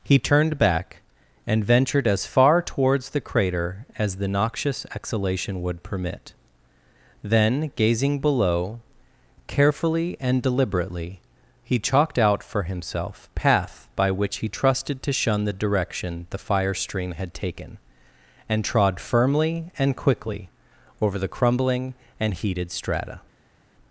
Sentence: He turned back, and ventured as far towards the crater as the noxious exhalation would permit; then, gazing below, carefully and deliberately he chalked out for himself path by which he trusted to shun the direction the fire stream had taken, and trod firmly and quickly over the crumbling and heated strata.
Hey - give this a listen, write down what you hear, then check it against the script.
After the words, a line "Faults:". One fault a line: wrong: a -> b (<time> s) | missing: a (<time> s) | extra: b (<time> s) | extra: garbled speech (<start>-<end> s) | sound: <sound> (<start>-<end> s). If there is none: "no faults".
He turned back, and ventured as far towards the crater as the noxious exhalation would permit; then, gazing below, carefully and deliberately he chalked out for himself path by which he trusted to shun the direction the fire stream had taken, and trod firmly and quickly over the crumbling and heated strata.
Faults:
no faults